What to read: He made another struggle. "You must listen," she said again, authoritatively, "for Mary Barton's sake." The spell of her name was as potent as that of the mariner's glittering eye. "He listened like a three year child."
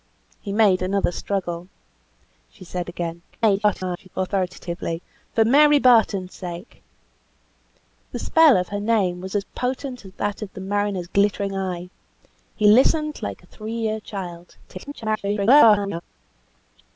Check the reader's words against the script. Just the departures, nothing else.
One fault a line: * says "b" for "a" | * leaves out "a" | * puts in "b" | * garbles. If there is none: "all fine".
* leaves out "You must listen"
* garbles
* garbles